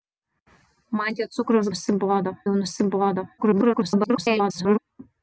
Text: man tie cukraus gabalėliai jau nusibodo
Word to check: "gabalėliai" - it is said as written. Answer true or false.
false